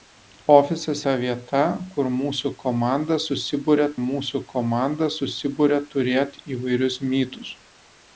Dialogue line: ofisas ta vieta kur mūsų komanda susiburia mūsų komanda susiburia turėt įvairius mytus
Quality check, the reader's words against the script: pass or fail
pass